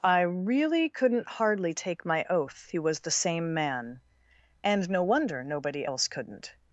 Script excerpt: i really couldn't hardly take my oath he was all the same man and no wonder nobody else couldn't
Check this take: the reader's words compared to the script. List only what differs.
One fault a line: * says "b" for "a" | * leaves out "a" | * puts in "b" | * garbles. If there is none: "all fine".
* leaves out "all"